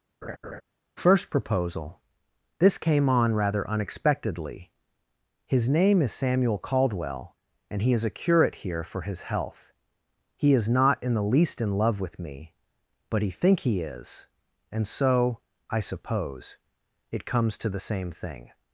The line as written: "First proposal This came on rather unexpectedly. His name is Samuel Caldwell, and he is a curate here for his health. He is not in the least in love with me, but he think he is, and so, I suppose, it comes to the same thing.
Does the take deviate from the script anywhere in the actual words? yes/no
no